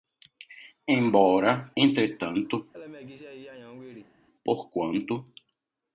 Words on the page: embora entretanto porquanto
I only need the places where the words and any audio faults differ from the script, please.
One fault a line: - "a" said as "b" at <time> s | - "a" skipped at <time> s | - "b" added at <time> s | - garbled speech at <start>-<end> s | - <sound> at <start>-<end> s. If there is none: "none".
- laugh at 2.7-4.1 s